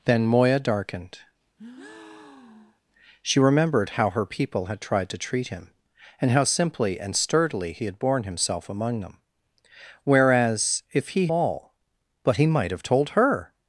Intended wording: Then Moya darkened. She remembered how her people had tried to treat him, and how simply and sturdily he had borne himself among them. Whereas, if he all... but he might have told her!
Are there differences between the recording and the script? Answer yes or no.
no